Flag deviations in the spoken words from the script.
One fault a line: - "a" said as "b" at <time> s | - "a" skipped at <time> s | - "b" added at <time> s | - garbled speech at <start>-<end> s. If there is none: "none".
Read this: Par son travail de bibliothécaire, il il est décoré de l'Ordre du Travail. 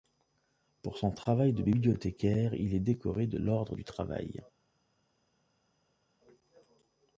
- "Par" said as "Pour" at 0.8 s
- "il" skipped at 2.7 s